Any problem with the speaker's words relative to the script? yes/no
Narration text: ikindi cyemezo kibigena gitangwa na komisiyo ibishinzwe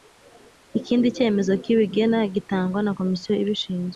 no